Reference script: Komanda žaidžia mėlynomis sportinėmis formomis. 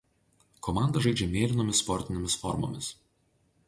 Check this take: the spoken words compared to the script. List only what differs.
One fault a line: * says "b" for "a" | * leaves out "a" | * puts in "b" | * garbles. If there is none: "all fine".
all fine